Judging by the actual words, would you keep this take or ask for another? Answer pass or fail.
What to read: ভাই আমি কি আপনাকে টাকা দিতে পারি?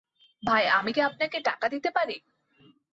pass